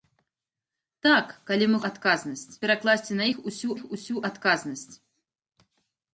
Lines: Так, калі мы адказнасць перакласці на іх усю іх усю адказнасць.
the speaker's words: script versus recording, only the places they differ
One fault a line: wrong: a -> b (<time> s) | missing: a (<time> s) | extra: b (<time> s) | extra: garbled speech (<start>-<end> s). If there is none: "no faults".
no faults